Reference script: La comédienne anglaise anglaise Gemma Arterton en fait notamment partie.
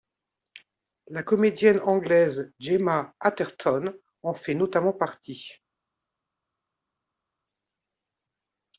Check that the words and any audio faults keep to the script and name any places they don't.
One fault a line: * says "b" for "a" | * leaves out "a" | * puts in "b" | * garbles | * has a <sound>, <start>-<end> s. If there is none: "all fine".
* leaves out "anglaise"